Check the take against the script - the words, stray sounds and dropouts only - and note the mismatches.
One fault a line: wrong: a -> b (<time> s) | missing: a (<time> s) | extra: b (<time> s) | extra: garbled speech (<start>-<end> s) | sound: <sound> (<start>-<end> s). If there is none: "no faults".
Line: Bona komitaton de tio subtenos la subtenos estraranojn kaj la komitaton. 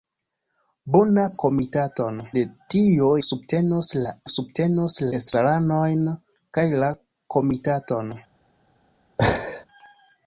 sound: laugh (9.2-9.7 s)